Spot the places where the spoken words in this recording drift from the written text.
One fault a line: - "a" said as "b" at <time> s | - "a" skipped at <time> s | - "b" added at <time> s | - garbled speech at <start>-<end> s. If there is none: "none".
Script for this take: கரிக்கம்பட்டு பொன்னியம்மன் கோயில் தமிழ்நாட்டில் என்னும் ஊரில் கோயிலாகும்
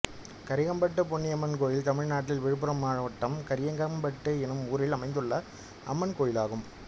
- "விழுப்புரம் மாவட்டம் கரிக்கம்பட்டு" added at 2.4 s
- "அமைந்துள்ள அம்மன்" added at 5.0 s